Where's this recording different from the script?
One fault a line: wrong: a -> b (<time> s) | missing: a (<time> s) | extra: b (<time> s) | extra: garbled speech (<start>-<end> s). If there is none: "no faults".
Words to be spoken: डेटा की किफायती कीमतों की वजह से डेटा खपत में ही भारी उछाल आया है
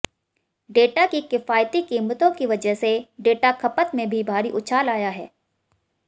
wrong: ही -> भी (4.1 s)